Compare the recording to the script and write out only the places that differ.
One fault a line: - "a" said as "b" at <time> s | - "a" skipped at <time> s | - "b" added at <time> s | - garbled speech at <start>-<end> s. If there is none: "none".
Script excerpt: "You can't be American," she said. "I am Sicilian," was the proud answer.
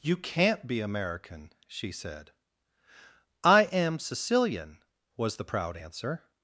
none